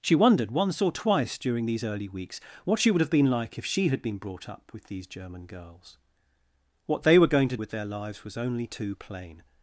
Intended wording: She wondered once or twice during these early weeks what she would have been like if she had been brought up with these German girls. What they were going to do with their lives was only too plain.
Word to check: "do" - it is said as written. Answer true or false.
false